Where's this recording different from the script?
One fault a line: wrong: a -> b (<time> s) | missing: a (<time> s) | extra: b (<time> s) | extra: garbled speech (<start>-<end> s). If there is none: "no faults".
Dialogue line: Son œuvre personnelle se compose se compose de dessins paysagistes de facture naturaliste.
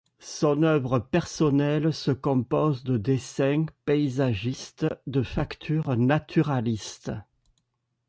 missing: se compose (2.8 s)